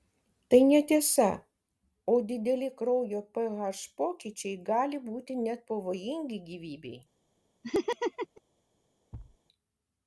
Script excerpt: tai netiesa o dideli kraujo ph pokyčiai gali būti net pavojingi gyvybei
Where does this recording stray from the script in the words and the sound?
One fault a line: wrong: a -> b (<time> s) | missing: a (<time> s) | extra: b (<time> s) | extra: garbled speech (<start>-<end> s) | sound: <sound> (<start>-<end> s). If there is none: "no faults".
sound: laugh (7.6-8.4 s)
sound: thud (9.1-9.4 s)